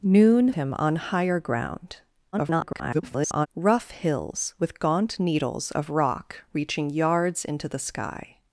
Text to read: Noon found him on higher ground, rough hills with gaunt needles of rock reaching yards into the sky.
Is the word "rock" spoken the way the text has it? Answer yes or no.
yes